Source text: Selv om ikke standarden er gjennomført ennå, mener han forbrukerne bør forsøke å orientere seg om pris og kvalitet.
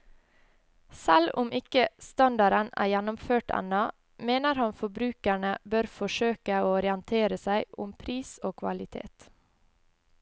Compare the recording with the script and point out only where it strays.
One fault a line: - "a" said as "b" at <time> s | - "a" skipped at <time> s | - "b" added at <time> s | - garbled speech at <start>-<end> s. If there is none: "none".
none